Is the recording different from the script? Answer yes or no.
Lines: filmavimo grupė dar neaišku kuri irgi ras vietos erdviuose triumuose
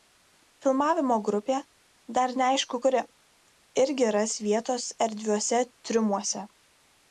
no